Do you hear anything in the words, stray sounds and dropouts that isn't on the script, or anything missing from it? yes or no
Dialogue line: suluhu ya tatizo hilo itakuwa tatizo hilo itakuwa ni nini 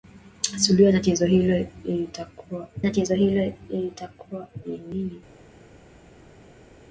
no